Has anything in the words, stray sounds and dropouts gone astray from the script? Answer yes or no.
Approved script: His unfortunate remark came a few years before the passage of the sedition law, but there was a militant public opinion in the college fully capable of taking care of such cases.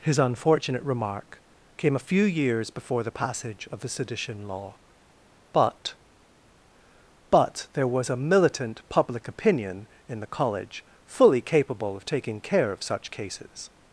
yes